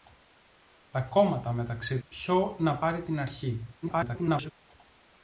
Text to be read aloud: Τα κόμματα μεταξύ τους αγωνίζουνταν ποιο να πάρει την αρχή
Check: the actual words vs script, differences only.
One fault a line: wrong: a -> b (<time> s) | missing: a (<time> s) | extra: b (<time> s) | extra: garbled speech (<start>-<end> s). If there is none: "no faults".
missing: τους αγωνίζουνταν (2.0 s)
extra: garbled speech (3.8-4.5 s)